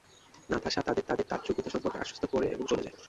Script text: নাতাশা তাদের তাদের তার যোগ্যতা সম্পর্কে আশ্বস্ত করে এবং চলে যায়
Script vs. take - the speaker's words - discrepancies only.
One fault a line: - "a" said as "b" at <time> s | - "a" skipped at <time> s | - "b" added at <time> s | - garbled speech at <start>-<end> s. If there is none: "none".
none